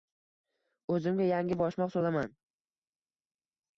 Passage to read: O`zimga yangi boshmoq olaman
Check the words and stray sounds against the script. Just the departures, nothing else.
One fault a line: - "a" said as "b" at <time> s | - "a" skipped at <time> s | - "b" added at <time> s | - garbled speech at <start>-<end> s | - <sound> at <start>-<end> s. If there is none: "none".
none